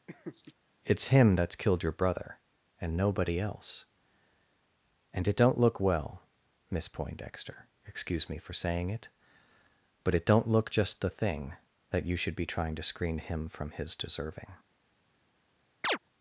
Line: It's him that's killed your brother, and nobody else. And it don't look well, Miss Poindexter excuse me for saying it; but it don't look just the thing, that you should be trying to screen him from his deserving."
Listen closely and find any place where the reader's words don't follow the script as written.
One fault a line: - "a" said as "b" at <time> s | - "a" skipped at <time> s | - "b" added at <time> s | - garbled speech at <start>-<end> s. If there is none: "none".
none